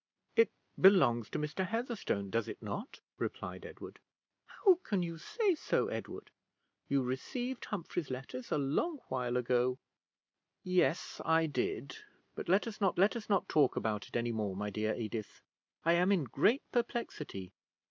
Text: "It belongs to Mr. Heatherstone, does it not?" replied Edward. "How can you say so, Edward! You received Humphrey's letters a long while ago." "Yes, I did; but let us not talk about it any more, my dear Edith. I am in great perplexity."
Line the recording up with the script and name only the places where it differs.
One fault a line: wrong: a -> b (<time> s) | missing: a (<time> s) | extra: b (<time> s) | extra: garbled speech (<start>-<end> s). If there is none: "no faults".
extra: let us not (13.0 s)